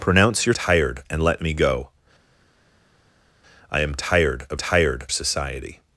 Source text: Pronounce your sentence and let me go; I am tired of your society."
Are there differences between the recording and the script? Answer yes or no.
yes